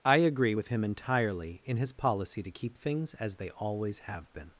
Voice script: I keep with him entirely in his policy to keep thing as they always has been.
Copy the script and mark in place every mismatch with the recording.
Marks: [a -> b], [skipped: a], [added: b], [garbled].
I [keep -> agree] with him entirely in his policy to keep [thing -> things] as they always [has -> have] been.